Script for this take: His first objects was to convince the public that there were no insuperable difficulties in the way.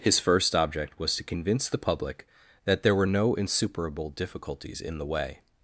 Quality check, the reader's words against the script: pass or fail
fail